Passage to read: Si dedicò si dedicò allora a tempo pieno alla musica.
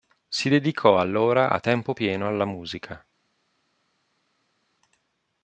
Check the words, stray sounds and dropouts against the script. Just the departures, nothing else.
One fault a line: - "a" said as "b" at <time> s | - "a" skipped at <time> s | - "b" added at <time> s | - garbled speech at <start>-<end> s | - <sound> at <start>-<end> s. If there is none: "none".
- "si dedicò" skipped at 1.0 s